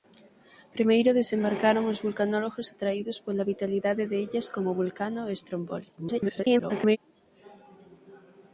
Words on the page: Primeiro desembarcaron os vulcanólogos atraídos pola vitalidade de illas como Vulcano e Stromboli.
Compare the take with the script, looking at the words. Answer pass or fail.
fail